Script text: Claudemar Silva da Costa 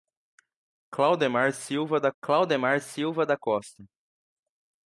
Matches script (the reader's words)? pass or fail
fail